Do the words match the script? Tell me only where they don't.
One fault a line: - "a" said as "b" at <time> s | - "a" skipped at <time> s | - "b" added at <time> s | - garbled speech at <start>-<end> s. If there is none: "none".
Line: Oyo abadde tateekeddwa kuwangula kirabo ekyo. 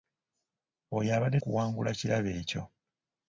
- "tateekeddwa" skipped at 1.4 s